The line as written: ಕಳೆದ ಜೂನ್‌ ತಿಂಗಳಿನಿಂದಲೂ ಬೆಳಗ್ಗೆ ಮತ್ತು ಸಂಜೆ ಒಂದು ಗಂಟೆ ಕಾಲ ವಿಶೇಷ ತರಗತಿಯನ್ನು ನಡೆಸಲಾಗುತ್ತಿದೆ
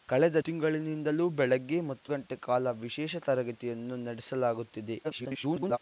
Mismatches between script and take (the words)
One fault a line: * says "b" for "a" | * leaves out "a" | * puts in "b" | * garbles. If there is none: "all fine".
* leaves out "ಜೂನ್"
* leaves out "ಸಂಜೆ ಒಂದು"
* garbles